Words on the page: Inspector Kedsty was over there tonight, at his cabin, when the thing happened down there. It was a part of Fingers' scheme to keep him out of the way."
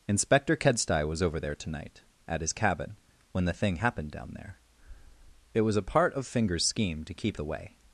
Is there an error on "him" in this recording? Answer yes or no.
yes